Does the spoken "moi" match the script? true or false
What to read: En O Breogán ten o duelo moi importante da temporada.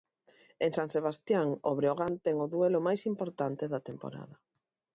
false